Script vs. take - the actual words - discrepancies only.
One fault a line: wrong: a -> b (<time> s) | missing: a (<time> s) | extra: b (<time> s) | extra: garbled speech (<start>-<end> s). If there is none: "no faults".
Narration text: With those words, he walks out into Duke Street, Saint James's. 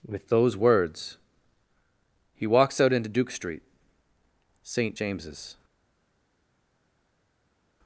no faults